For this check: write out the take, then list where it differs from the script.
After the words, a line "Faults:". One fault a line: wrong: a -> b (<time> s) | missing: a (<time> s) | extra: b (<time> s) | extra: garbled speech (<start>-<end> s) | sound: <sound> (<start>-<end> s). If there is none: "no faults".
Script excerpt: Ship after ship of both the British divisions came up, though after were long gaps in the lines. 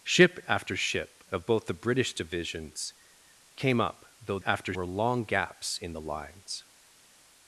Ship after ship of both the British divisions came up, though after were long gaps in the lines.
Faults:
no faults